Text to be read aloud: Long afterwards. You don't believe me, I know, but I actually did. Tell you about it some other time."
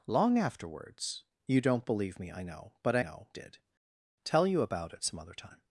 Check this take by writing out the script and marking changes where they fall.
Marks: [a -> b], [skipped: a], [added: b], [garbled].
Long afterwards. You don't believe me, I know, but I [actually -> know] did. Tell you about it some other time."